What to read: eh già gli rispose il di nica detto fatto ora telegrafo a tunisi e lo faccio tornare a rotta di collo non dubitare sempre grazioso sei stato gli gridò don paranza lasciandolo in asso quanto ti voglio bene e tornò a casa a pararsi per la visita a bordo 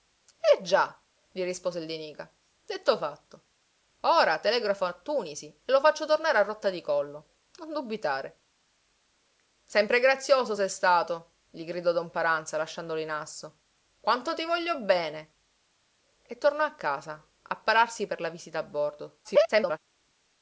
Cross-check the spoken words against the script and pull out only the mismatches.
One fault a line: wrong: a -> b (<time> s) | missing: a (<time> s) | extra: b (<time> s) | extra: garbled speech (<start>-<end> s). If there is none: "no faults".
extra: garbled speech (19.2-19.8 s)